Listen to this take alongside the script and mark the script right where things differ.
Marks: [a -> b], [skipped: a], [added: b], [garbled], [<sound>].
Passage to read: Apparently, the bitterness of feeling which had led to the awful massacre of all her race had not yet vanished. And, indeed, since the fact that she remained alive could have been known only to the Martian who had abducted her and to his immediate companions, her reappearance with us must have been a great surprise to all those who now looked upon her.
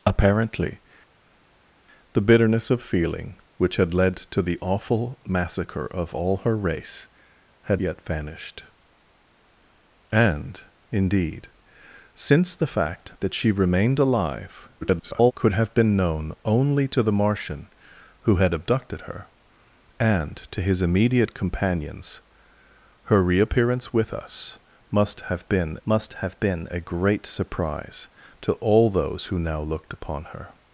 Apparently, the bitterness of feeling which had led to the awful massacre of all her race had [skipped: not] yet vanished. And, indeed, since the fact that she remained alive [garbled] could have been known only to the Martian who had abducted her and to his immediate companions, her reappearance with us must have been [added: must have been] a great surprise to all those who now looked upon her.